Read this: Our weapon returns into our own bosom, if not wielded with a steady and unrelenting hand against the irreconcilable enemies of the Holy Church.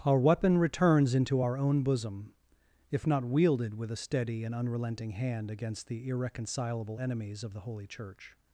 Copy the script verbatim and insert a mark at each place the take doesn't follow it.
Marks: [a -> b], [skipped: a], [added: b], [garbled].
Our weapon returns into our own bosom, if not wielded with a steady and unrelenting hand against the irreconcilable enemies of the Holy Church.